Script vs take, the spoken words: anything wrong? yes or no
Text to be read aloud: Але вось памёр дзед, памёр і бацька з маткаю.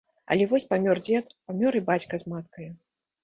no